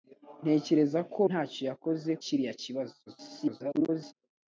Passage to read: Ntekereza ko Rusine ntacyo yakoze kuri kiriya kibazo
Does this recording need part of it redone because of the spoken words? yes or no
yes